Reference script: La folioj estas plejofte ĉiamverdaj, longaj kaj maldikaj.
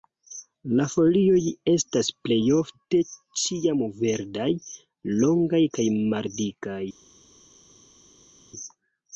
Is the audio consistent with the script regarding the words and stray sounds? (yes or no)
yes